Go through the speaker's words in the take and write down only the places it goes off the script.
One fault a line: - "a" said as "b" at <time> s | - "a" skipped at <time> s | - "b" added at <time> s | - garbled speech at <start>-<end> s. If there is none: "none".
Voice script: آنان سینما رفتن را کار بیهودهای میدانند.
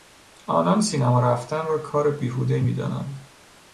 none